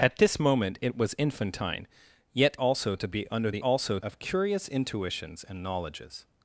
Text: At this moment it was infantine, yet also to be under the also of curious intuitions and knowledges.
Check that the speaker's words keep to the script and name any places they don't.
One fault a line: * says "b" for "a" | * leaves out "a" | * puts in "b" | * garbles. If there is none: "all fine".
all fine